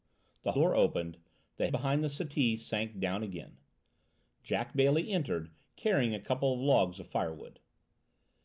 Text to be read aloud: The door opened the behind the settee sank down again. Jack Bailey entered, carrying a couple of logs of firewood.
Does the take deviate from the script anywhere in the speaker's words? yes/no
no